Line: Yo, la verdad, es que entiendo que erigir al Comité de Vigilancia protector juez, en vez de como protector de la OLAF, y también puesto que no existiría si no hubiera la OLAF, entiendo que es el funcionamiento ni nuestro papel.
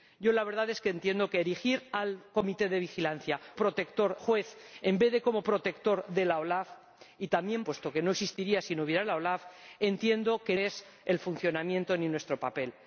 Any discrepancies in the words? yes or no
no